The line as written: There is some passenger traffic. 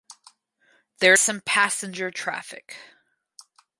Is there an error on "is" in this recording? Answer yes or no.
yes